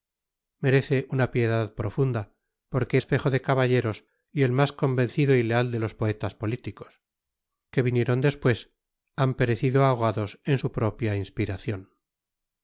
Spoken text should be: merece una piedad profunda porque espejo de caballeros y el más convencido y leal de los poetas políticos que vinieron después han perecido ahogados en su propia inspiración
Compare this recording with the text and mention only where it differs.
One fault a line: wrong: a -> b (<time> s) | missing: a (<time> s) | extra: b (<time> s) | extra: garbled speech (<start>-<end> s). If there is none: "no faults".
no faults